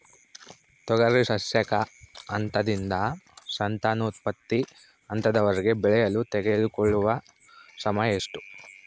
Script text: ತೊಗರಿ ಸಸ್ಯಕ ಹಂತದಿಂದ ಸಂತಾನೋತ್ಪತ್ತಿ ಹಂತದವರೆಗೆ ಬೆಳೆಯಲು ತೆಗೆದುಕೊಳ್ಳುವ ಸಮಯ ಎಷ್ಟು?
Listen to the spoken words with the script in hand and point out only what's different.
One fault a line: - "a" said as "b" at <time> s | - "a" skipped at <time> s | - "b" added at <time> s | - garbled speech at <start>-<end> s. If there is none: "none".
none